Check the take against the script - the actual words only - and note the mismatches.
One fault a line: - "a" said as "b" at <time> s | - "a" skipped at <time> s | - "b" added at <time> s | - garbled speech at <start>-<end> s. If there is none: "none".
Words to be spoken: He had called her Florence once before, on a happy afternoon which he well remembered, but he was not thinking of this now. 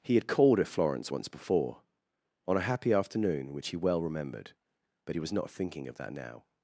- "this" said as "that" at 6.0 s